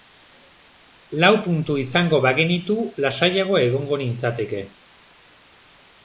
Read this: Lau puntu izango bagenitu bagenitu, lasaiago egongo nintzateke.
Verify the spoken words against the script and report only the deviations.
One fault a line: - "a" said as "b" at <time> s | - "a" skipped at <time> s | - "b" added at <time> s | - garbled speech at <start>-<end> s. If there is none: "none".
- "bagenitu" skipped at 2.8 s